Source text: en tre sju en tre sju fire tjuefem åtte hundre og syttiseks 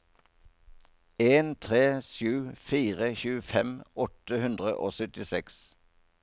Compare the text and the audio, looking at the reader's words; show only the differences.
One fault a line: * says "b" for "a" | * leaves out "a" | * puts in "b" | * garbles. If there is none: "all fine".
* leaves out "en tre sju"